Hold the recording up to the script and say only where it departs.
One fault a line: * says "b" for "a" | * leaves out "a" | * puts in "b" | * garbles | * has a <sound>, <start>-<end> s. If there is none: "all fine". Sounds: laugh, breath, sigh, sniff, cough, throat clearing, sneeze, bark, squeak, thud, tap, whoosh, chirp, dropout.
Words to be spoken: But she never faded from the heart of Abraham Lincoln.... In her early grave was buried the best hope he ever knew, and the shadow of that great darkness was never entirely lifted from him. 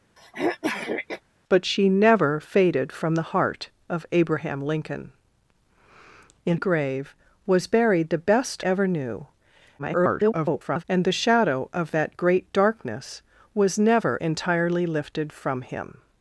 * has a throat clearing, 0.2-1.2 s
* leaves out "her early"
* leaves out "hope he"
* garbles